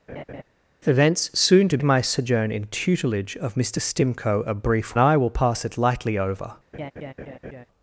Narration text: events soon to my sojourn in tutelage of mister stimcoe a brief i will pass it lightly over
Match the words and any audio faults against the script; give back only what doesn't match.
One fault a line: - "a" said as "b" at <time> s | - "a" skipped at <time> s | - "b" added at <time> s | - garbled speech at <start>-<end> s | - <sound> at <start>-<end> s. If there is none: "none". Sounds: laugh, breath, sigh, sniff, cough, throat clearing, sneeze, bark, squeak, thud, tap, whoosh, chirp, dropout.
- laugh at 0.1-0.4 s
- laugh at 6.7-7.7 s